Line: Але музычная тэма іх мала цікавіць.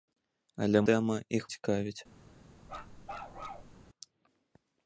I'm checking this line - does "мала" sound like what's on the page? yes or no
no